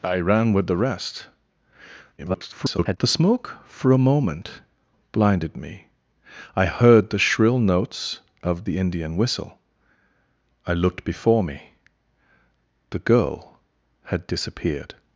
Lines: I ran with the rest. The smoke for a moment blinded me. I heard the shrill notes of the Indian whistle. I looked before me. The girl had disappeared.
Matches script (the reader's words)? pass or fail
fail